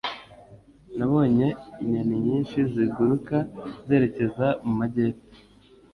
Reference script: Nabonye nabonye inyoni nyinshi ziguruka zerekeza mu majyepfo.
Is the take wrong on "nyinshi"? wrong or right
right